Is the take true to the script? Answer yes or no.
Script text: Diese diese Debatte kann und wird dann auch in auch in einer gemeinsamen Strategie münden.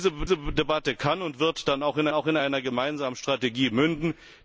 yes